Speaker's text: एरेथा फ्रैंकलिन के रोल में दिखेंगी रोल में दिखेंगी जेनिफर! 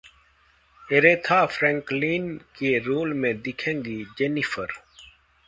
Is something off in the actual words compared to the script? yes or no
yes